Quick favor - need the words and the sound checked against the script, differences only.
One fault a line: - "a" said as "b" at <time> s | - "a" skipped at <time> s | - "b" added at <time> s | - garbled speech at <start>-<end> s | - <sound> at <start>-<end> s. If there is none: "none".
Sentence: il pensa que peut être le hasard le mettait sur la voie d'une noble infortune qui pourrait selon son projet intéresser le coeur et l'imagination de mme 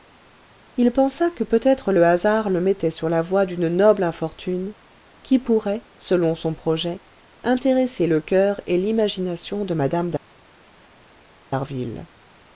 none